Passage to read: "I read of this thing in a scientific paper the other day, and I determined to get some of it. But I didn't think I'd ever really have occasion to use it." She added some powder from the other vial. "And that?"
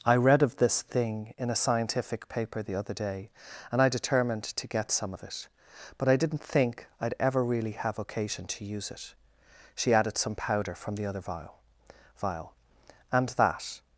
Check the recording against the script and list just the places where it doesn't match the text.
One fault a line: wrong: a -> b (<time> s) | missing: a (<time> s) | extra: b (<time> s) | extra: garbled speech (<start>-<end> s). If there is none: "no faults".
extra: vial (12.1 s)